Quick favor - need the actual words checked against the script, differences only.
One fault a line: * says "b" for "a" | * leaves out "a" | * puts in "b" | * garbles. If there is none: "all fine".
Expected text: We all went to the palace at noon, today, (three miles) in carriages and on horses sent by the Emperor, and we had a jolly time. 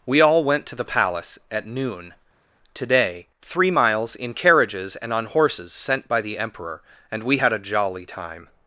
all fine